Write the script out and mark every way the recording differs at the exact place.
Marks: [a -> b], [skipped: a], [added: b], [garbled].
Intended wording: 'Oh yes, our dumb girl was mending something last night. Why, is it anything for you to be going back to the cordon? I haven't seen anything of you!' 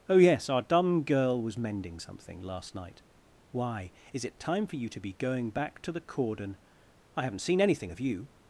'Oh yes, our dumb girl was mending something last night. Why, is it [anything -> time] for you to be going back to the cordon? I haven't seen anything of you!'